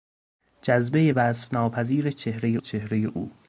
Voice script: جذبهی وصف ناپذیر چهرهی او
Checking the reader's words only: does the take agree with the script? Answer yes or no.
no